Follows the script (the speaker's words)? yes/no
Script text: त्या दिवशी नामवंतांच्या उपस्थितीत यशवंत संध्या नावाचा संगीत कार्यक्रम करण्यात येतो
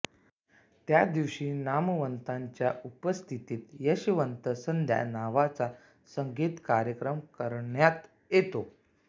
yes